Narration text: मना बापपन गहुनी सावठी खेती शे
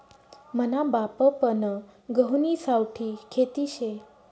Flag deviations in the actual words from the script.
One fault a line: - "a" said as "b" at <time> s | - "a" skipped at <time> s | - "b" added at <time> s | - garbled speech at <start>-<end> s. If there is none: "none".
none